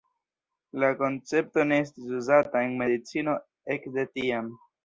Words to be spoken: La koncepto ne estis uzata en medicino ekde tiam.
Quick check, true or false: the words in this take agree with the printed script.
true